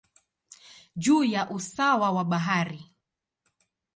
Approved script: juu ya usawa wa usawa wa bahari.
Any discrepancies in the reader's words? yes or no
yes